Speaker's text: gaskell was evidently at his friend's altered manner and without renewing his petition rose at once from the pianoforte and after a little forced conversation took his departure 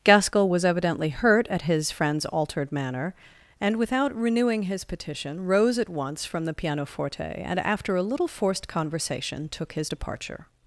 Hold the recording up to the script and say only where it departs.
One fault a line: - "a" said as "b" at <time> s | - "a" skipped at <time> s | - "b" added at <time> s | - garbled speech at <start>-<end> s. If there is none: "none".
- "hurt" added at 1.1 s